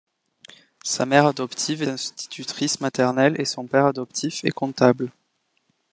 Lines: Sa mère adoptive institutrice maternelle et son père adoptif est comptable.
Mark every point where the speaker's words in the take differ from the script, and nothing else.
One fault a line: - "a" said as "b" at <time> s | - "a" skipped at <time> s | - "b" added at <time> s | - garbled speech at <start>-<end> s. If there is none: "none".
none